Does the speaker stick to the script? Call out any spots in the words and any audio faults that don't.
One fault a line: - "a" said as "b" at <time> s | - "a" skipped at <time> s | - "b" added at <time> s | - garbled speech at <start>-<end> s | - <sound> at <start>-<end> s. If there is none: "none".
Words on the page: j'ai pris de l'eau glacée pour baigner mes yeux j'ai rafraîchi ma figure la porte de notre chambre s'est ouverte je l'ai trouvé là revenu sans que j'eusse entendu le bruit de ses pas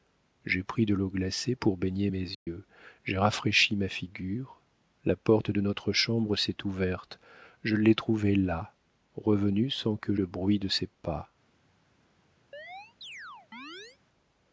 - dropout at 2.3-2.5 s
- "j'eusse entendu" skipped at 10.1 s
- chirp at 12.5-14.0 s